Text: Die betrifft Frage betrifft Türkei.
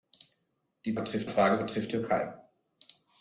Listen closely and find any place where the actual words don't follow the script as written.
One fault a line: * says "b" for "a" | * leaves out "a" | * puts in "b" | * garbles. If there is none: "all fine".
all fine